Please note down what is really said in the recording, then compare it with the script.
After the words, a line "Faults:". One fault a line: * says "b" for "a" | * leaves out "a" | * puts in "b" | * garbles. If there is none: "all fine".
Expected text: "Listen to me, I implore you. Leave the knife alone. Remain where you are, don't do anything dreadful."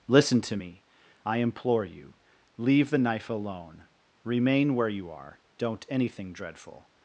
"Listen to me, I implore you. Leave the knife alone. Remain where you are, don't anything dreadful."
Faults:
* leaves out "do"